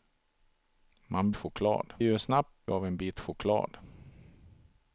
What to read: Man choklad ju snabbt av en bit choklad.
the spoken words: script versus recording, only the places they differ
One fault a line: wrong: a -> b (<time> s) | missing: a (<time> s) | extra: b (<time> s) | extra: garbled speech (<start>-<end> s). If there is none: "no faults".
no faults